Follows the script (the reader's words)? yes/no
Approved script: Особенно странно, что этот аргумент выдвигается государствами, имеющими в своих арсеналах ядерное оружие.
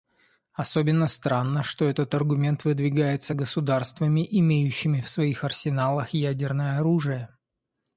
yes